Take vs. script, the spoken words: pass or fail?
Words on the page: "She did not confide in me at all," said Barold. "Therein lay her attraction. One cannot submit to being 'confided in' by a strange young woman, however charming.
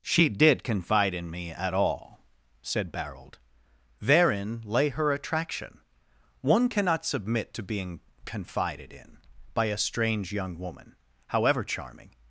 fail